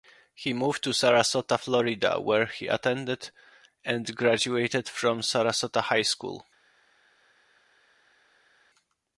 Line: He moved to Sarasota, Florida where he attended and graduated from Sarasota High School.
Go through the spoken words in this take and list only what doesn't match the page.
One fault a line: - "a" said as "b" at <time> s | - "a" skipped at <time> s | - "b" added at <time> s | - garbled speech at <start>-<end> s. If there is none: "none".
none